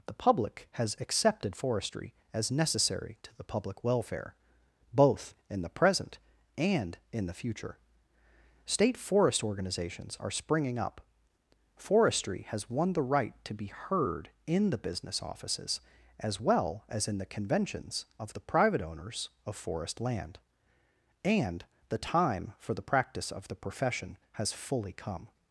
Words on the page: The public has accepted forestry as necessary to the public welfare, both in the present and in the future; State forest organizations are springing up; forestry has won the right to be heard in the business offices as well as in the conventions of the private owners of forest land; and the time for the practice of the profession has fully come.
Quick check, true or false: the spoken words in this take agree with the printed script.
true